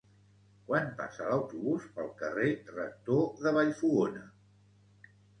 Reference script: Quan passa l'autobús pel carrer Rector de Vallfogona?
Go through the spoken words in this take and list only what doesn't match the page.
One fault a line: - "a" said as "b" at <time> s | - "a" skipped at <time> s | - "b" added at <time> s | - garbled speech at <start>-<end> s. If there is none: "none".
none